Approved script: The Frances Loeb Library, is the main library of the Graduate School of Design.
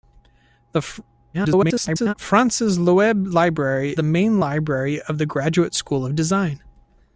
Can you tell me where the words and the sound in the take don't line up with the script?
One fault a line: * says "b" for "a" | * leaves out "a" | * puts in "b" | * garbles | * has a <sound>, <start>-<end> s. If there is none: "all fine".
* garbles
* leaves out "is"